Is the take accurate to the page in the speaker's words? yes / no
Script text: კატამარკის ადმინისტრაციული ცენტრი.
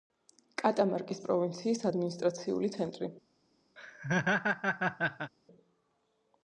no